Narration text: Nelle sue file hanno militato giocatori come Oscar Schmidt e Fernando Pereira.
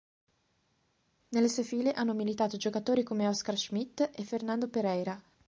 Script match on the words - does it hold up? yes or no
yes